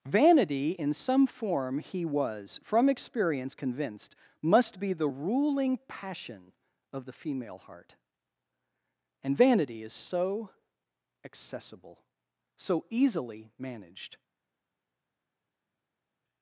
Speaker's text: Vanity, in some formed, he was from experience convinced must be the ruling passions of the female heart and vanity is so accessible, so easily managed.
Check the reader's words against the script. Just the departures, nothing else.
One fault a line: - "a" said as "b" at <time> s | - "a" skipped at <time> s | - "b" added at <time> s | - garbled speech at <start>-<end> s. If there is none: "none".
- "formed" said as "form" at 1.3 s
- "passions" said as "passion" at 5.9 s